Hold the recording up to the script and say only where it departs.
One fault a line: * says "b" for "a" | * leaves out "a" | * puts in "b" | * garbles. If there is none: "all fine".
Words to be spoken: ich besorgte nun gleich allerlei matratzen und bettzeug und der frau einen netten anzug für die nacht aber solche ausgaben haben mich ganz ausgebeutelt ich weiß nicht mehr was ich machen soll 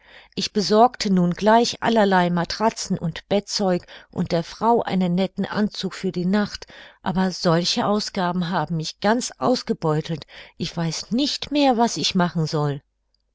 all fine